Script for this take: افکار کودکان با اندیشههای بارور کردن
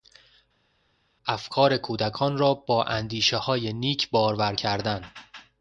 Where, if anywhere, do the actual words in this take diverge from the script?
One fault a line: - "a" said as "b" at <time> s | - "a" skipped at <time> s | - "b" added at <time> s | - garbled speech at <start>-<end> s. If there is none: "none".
- "را" added at 2.4 s
- "نیک" added at 3.7 s